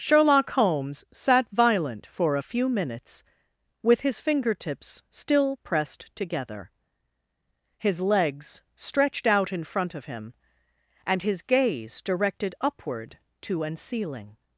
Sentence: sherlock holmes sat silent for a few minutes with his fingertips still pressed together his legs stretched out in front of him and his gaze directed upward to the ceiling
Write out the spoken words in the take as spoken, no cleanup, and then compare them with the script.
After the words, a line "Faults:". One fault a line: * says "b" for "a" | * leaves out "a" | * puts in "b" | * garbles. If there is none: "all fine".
sherlock holmes sat violent for a few minutes with his fingertips still pressed together his legs stretched out in front of him and his gaze directed upward to an ceiling
Faults:
* says "violent" for "silent"
* says "an" for "the"